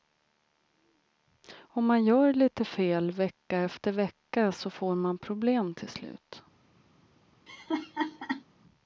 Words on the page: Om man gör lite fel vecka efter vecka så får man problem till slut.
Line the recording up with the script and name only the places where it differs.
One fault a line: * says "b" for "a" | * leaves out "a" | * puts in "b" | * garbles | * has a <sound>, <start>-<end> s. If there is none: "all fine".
* has a laugh, 7.5-8.4 s